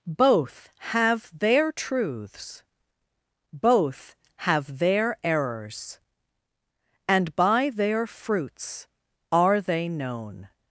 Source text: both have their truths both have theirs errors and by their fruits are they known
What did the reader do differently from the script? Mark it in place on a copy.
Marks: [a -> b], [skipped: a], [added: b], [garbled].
both have their truths both have [theirs -> their] errors and by their fruits are they known